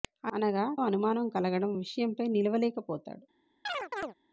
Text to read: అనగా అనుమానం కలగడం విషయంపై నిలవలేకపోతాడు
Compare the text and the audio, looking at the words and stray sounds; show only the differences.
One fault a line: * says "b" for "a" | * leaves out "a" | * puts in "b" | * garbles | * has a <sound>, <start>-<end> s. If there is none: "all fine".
* has a chirp, 3.6-4.1 s